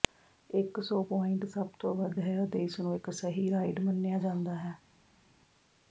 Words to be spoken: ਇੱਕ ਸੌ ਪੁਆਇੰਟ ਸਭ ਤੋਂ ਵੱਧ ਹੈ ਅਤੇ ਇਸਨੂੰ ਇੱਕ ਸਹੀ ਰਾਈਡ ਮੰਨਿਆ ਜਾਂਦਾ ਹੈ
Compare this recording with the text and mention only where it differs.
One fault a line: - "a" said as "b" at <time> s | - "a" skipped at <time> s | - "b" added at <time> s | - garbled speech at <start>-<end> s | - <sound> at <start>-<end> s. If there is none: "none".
none